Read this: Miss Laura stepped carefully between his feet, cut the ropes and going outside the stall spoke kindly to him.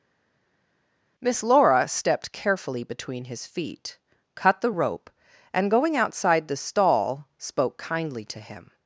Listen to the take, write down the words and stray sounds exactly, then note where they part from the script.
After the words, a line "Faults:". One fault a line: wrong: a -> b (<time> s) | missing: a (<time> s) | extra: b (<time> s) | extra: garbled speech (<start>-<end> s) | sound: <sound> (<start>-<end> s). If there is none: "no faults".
Miss Laura stepped carefully between his feet, cut the rope and going outside the stall spoke kindly to him.
Faults:
wrong: ropes -> rope (4.7 s)